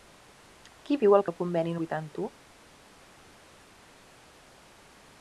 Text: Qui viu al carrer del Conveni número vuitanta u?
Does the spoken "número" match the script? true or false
false